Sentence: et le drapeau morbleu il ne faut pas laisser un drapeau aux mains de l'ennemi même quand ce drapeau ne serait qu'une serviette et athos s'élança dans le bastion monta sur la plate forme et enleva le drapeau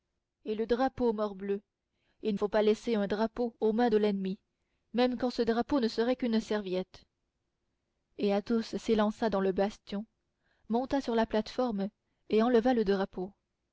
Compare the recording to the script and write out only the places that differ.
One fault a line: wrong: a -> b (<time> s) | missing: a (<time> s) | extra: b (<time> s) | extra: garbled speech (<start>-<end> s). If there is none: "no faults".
missing: ne (2.4 s)